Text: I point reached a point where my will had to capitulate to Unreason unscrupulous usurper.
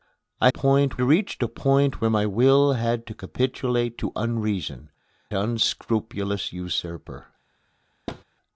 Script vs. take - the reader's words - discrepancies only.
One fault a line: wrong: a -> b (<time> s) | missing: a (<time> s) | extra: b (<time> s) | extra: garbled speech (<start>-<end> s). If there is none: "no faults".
no faults